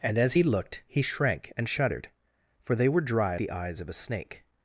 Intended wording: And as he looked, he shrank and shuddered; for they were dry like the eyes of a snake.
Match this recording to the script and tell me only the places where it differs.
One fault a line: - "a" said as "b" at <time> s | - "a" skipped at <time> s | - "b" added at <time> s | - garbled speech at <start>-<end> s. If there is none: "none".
- "like" skipped at 3.4 s